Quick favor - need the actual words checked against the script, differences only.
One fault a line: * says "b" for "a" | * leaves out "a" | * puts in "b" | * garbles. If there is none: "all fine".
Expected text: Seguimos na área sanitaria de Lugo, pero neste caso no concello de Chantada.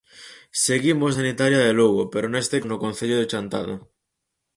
* leaves out "na área"
* leaves out "caso"